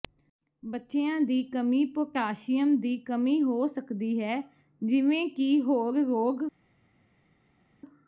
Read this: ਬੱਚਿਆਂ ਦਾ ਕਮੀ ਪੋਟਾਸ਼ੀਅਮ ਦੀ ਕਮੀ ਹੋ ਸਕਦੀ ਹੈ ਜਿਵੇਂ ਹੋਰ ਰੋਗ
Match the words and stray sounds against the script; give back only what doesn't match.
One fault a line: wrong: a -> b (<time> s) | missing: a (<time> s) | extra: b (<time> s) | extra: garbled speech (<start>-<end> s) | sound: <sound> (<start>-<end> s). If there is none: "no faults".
wrong: ਦਾ -> ਦੀ (1.2 s)
extra: ਕਿ (5.3 s)